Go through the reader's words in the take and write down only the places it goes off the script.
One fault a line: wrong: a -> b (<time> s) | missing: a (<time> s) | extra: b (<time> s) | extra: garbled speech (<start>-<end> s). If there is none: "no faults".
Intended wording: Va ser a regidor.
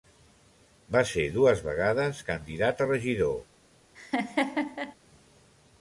extra: dues vegades candidat (1.3 s)